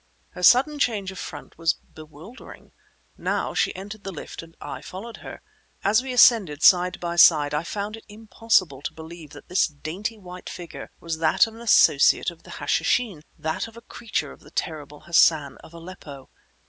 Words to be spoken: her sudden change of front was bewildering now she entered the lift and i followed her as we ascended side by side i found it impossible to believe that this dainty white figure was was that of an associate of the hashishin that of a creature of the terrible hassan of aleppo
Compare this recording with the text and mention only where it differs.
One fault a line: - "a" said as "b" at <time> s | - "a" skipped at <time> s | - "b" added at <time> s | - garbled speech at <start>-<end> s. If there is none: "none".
- "was" skipped at 11.2 s